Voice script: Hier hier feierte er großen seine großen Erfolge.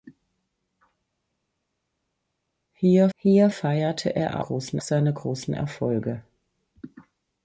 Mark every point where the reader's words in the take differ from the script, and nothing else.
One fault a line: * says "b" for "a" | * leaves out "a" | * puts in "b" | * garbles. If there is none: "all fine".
all fine